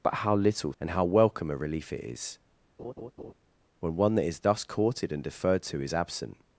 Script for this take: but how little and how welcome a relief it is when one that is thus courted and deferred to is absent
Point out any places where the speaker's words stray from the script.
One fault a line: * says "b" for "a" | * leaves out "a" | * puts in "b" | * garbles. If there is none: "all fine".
all fine